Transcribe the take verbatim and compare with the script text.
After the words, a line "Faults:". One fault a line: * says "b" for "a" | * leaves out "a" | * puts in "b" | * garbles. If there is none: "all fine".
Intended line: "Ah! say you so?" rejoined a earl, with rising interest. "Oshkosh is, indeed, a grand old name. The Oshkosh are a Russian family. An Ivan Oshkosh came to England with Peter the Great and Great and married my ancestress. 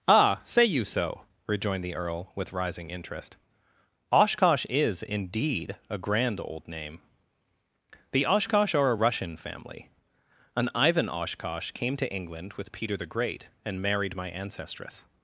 "Ah! say you so?" rejoined the earl, with rising interest. "Oshkosh is, indeed, a grand old name. The Oshkosh are a Russian family. An Ivan Oshkosh came to England with Peter the Great and married my ancestress.
Faults:
* says "the" for "a"
* leaves out "Great and"